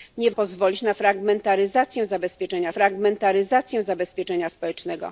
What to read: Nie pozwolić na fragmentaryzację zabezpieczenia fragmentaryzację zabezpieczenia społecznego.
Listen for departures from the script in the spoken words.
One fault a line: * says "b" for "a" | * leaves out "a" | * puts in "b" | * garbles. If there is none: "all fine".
all fine